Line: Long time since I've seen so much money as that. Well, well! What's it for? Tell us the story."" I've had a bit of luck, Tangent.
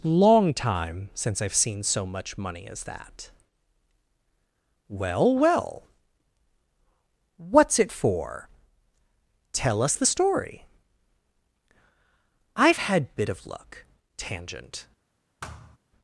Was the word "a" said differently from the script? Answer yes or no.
yes